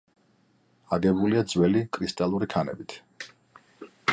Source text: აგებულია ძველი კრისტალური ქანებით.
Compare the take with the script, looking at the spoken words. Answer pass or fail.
pass